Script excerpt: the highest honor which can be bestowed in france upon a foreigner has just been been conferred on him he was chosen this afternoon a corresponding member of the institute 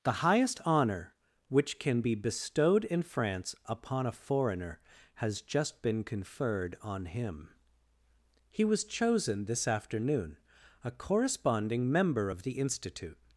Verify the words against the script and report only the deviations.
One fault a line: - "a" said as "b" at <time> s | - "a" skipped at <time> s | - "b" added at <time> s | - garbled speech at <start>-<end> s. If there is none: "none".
- "been" skipped at 6.0 s